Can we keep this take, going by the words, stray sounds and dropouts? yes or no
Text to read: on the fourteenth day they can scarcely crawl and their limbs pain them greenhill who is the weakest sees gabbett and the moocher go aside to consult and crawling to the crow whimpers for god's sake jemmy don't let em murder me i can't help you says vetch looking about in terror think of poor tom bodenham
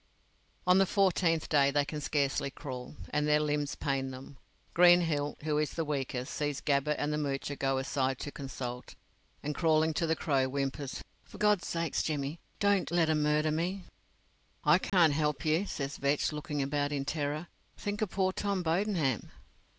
no